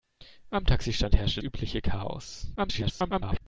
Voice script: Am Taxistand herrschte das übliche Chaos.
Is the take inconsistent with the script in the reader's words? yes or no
yes